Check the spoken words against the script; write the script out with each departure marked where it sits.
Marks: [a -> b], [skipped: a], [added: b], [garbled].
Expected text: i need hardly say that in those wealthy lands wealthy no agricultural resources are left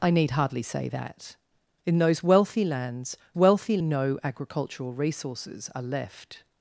i need hardly say that in those wealthy lands wealthy no agricultural resources are left